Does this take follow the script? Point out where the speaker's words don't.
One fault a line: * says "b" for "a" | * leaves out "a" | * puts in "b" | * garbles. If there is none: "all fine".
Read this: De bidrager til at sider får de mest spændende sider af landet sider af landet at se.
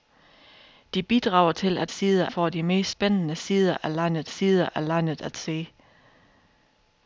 all fine